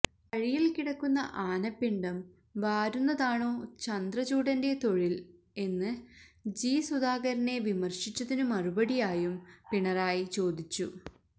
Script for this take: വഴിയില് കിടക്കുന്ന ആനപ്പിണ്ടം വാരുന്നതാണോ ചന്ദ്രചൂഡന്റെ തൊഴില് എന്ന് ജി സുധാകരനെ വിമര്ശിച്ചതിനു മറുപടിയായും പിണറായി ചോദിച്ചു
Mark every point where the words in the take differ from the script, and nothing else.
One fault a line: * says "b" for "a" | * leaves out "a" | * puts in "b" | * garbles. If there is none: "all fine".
all fine